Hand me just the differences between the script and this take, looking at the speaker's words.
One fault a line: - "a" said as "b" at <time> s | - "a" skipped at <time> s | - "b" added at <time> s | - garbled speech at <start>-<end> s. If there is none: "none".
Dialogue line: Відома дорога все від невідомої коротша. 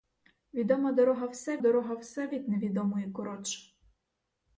- "дорога все" added at 1.6 s